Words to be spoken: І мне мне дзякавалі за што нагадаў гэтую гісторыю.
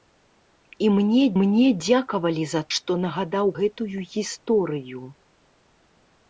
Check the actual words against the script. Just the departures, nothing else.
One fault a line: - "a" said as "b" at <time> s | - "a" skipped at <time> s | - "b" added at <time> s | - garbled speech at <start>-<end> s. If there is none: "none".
none